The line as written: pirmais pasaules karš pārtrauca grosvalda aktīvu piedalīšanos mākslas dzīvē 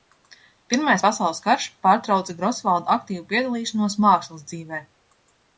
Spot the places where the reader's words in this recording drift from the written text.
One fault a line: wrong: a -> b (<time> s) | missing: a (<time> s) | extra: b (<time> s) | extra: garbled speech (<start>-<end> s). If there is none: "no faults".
no faults